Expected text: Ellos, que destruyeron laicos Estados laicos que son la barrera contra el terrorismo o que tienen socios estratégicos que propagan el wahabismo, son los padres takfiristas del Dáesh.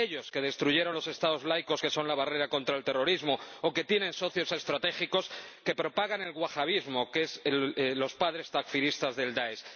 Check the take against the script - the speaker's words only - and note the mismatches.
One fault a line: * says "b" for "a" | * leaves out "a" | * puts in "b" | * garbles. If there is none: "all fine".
* says "los" for "laicos"
* puts in "que"